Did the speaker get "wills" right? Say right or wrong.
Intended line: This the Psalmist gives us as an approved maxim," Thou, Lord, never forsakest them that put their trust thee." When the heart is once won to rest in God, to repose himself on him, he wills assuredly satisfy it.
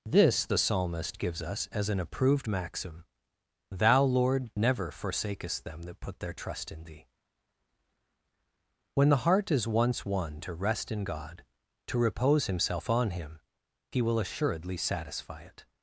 wrong